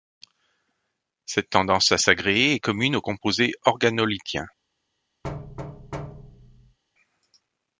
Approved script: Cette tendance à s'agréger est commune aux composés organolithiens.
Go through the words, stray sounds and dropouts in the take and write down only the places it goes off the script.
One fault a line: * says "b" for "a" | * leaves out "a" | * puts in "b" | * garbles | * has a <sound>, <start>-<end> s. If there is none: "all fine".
* has a thud, 5.2-6.8 s